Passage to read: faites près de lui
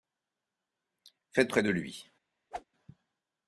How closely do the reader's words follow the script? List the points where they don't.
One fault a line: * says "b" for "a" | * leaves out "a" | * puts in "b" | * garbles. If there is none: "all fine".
all fine